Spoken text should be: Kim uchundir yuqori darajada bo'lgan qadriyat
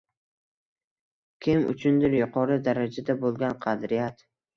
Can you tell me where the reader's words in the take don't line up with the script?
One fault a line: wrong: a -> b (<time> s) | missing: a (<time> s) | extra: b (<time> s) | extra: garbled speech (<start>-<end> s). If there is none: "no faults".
no faults